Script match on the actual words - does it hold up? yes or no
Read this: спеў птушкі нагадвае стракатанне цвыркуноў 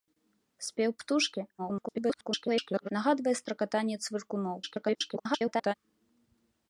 no